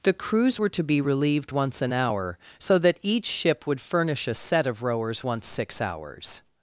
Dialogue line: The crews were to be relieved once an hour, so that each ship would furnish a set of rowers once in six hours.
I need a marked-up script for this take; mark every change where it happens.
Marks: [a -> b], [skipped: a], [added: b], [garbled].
The crews were to be relieved once an hour, so that each ship would furnish a set of rowers once [skipped: in] six hours.